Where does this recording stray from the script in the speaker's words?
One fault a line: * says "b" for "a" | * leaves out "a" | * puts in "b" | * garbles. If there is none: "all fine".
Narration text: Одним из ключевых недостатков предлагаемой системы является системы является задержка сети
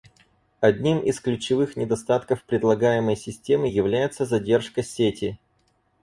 * leaves out "системы является"